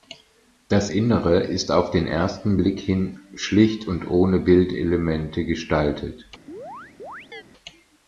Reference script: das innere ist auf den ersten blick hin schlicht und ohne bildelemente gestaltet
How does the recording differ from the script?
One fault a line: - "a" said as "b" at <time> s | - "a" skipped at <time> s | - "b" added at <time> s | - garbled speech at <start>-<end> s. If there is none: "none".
none